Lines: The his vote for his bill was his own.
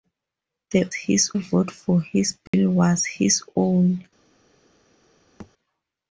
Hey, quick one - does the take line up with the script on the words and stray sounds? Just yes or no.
no